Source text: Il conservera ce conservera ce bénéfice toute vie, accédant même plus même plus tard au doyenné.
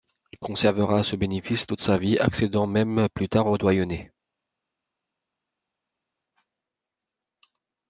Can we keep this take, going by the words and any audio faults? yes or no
no